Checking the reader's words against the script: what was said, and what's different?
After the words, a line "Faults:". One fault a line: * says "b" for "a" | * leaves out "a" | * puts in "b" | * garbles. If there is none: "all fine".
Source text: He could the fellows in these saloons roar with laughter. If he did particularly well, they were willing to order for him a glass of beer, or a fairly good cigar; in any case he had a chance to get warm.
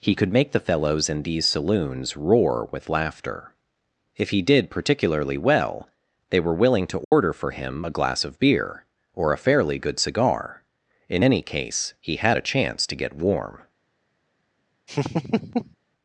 He could make the fellows in these saloons roar with laughter. If he did particularly well, they were willing to order for him a glass of beer, or a fairly good cigar; in any case he had a chance to get warm.
Faults:
* puts in "make"